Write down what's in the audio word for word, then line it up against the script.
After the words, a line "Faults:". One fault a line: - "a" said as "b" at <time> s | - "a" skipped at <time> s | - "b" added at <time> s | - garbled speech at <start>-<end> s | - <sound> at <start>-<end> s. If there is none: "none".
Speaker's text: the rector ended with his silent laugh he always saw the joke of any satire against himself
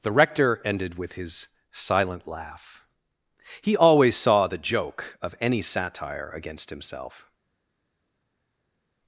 the rector ended with his silent laugh he always saw the joke of any satire against himself
Faults:
none